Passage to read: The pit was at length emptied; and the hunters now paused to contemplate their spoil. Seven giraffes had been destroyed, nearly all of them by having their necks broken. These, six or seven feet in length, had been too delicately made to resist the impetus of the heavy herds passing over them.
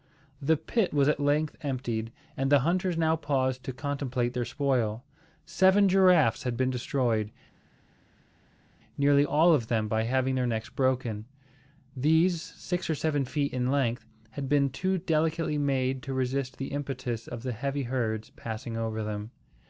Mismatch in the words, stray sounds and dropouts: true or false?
false